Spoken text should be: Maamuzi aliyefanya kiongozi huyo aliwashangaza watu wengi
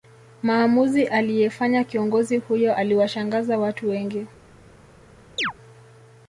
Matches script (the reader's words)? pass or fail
pass